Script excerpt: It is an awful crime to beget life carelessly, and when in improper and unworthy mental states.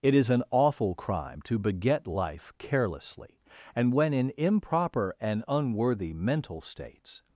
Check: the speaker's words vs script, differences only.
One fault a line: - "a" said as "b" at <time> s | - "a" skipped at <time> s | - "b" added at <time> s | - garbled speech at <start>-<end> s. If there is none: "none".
none